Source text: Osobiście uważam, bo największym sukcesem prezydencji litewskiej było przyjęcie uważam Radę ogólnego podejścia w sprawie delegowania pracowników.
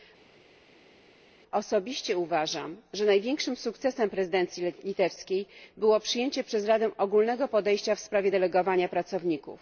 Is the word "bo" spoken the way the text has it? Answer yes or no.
no